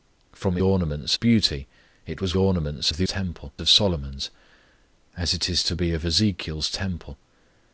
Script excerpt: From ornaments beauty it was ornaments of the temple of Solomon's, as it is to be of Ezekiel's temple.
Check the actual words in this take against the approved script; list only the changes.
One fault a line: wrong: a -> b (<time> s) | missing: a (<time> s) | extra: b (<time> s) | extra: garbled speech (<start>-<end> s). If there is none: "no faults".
no faults